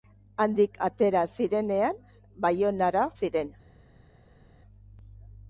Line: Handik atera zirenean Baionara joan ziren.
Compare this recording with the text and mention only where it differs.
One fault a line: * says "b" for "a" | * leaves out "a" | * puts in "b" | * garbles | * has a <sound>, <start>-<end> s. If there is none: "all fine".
* leaves out "joan"